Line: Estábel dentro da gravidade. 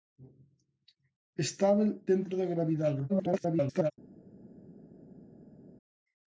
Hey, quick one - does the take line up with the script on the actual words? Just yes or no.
no